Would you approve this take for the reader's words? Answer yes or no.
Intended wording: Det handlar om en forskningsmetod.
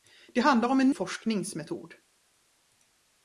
yes